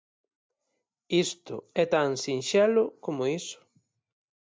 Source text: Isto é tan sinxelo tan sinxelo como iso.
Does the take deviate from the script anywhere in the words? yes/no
yes